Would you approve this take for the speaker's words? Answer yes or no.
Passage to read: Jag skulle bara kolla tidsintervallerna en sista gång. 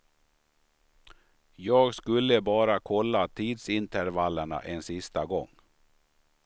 yes